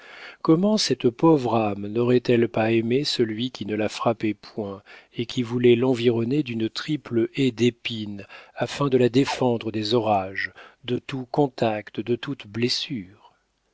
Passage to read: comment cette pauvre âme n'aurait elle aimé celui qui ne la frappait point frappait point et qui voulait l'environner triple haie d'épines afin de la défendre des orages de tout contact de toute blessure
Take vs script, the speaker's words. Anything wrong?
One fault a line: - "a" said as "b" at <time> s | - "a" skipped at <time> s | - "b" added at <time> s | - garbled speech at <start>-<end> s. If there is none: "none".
- "pas" added at 2.5 s
- "frappait point" skipped at 4.8 s
- "d'une" added at 6.4 s